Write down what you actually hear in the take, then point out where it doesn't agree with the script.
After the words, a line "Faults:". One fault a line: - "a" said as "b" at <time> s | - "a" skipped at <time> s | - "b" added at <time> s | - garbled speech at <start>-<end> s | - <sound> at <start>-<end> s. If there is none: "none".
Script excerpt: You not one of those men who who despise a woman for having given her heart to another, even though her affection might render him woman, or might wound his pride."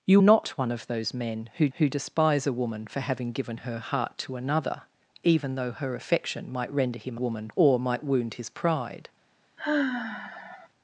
You not one of those men who who despise a woman for having given her heart to another, even though her affection might render him woman, or might wound his pride."
Faults:
- sigh at 9.6-10.7 s